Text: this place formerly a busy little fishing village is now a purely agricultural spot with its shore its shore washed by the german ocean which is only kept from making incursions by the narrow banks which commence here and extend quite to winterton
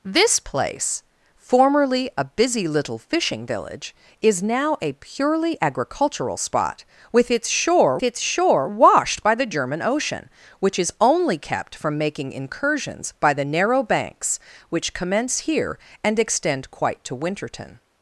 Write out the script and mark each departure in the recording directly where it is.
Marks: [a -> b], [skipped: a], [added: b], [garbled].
this place formerly a busy little fishing village is now a purely agricultural spot with its shore its shore washed by the german ocean which is only kept from making incursions by the narrow banks which commence here and extend quite to winterton